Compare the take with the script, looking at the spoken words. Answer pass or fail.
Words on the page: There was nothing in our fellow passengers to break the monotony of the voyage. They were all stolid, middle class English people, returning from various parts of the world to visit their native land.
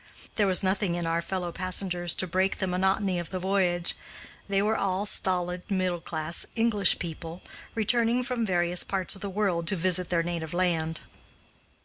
pass